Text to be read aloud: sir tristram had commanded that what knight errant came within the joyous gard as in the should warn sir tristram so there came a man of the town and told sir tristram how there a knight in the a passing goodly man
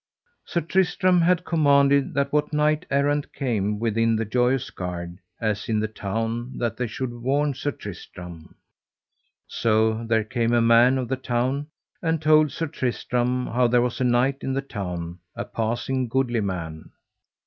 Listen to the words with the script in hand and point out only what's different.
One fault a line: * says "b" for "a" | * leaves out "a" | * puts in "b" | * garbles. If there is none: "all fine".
* puts in "town that they"
* puts in "was"
* puts in "town"